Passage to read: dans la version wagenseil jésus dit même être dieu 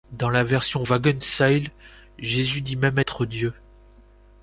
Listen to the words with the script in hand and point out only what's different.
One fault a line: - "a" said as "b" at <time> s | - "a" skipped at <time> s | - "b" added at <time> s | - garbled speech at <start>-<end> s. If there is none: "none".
none